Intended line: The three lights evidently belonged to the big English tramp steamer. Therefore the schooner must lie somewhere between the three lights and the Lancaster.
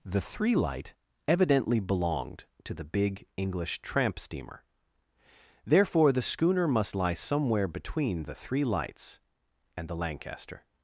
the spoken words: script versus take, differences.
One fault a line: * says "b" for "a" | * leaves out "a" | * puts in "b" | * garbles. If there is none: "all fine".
* says "light" for "lights"